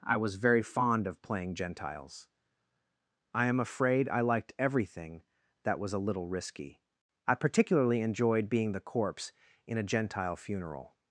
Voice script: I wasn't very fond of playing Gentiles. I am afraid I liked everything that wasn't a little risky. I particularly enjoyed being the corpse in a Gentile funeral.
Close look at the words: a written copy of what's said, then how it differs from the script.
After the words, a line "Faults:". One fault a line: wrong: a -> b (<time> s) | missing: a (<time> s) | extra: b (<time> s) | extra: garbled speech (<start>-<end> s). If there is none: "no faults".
I was very fond of playing Gentiles. I am afraid I liked everything that was a little risky. I particularly enjoyed being the corpse in a Gentile funeral.
Faults:
wrong: wasn't -> was (0.2 s)
wrong: wasn't -> was (5.8 s)